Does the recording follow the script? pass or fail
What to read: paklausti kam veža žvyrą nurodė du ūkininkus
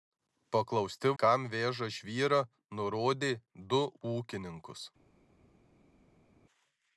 pass